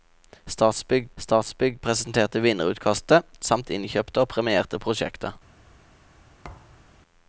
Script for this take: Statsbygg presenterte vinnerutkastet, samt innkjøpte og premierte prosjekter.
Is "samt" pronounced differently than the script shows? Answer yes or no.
no